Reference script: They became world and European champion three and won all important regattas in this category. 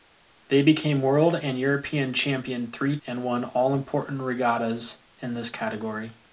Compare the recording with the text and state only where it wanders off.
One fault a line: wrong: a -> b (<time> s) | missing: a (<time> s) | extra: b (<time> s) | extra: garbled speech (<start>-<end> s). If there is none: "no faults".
no faults